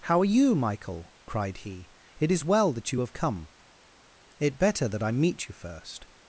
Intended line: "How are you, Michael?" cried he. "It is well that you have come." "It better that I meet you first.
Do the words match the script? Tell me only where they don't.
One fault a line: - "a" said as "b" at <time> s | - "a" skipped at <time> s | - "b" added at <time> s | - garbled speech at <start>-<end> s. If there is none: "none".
none